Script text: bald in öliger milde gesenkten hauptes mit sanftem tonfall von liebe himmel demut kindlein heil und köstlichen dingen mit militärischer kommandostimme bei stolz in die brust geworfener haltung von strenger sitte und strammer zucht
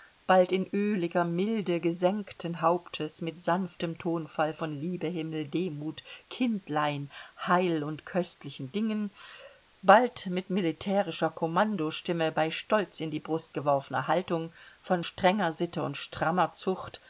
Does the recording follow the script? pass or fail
fail